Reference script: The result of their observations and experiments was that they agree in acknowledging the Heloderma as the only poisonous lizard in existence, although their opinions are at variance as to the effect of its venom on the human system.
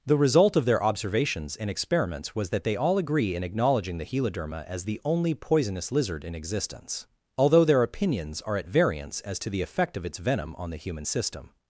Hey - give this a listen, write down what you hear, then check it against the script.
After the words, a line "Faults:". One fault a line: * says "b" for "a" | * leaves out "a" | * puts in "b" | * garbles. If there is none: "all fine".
The result of their observations and experiments was that they all agree in acknowledging the Heloderma as the only poisonous lizard in existence, although their opinions are at variance as to the effect of its venom on the human system.
Faults:
* puts in "all"